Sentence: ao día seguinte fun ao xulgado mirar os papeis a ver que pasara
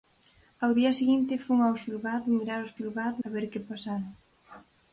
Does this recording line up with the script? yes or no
no